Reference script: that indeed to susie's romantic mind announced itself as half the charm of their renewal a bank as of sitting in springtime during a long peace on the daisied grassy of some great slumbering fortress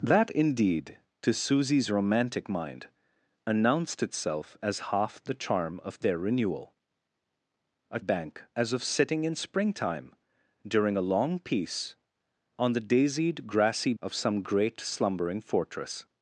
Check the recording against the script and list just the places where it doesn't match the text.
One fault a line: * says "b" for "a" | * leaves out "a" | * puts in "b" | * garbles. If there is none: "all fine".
all fine